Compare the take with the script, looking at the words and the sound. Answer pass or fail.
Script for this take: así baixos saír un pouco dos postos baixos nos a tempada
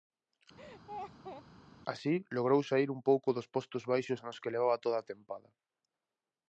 fail